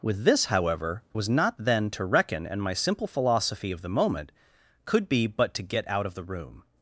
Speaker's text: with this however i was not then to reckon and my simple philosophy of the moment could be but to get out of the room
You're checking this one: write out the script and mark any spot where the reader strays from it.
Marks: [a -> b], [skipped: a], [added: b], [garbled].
with this however [skipped: i] was not then to reckon and my simple philosophy of the moment could be but to get out of the room